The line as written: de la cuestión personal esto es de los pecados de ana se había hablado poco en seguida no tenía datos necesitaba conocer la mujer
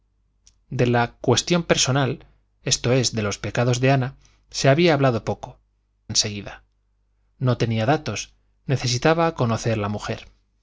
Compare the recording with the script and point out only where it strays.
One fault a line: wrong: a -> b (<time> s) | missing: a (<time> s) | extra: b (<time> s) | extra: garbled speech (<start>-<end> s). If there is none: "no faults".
no faults